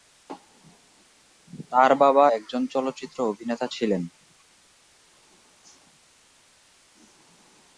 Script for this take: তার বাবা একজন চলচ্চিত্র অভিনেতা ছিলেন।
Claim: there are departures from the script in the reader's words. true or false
false